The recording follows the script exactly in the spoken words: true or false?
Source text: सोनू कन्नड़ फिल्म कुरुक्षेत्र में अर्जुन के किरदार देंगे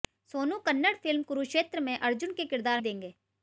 true